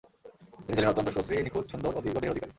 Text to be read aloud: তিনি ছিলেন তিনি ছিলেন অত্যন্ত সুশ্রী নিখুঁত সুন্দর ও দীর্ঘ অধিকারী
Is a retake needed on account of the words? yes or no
yes